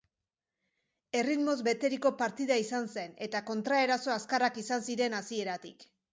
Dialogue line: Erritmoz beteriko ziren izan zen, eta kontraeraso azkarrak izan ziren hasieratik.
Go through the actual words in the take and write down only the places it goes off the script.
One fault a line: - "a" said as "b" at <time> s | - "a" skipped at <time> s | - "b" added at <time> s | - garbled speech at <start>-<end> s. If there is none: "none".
- "ziren" said as "partida" at 2.2 s